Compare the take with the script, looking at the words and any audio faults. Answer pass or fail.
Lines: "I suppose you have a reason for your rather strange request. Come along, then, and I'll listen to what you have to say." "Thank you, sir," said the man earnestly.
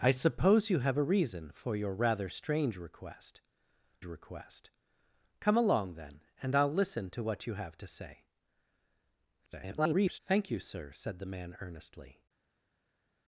fail